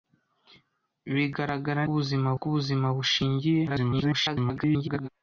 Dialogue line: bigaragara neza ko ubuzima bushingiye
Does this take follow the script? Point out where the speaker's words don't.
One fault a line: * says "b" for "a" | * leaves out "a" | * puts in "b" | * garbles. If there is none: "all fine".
* says "ubuzima" for "neza"
* garbles